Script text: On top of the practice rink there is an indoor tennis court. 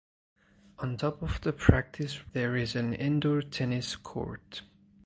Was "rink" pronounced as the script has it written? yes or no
no